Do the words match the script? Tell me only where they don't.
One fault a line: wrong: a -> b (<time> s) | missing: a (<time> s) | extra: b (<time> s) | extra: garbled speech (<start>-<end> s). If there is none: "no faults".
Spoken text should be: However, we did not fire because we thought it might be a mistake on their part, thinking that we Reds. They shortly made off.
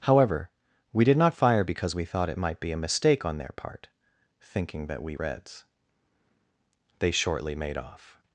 no faults